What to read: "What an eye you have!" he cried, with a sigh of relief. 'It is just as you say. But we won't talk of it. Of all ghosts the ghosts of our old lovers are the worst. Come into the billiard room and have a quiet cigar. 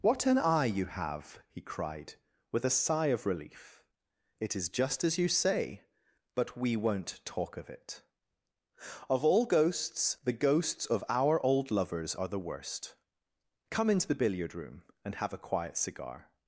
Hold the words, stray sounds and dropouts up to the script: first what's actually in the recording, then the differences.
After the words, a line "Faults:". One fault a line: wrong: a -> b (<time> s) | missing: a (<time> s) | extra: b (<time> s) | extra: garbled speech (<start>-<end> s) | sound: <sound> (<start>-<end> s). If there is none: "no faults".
"What an eye you have!" he cried, with a sigh of relief. 'It is just as you say. But we won't talk of it. Of all ghosts the ghosts of our old lovers are the worst. Come into the billiard room and have a quiet cigar.
Faults:
no faults